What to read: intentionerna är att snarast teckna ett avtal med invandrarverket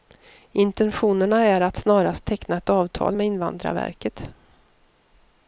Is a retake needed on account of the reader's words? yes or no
no